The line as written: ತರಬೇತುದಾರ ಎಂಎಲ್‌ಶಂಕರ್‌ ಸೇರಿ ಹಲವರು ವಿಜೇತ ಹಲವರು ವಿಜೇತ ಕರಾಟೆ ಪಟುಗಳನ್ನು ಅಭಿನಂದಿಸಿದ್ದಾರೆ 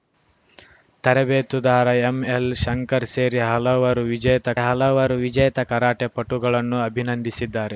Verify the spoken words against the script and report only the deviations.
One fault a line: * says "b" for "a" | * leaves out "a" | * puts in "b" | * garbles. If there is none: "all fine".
all fine